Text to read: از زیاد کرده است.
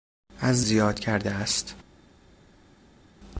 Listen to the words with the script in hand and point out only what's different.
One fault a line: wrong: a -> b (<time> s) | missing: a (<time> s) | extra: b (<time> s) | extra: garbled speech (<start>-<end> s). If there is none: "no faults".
no faults